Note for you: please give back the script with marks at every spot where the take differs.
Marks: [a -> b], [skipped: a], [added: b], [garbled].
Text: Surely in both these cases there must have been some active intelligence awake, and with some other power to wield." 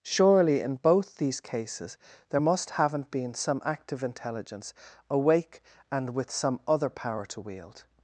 Surely in both these cases there must [have -> haven't] been some active intelligence awake, and with some other power to wield."